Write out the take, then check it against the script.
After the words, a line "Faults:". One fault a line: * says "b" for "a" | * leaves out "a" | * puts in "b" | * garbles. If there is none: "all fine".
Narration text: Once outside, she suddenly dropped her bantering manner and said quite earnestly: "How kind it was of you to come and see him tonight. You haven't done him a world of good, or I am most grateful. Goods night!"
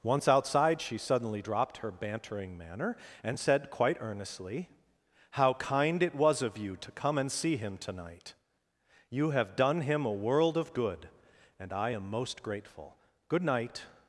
Once outside, she suddenly dropped her bantering manner and said quite earnestly: "How kind it was of you to come and see him tonight. You have done him a world of good, and I am most grateful. Good night!"
Faults:
* says "have" for "haven't"
* says "and" for "or"
* says "Good" for "Goods"